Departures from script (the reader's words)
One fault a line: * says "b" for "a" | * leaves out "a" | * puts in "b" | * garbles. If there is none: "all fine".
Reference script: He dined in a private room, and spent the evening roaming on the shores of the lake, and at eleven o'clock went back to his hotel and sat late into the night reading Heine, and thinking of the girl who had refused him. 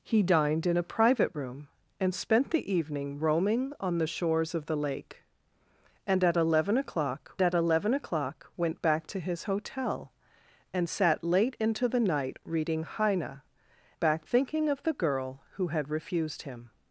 * puts in "at eleven o'clock"
* says "back" for "and"